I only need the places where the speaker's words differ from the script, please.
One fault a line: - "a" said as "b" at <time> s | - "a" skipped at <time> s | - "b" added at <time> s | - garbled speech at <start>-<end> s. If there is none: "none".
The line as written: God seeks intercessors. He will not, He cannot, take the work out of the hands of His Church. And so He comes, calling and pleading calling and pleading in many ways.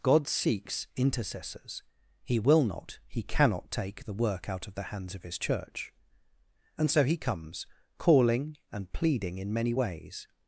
- "calling and pleading" skipped at 9.4 s